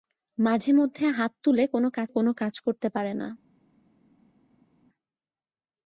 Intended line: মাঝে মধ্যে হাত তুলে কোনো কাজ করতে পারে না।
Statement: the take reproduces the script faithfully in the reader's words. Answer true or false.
false